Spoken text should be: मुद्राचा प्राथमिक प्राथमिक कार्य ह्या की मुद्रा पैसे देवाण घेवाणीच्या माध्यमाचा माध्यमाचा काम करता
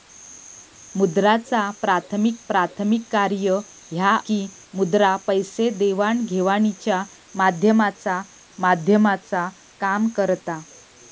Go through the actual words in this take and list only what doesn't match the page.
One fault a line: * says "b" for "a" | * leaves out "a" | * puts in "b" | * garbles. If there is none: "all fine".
all fine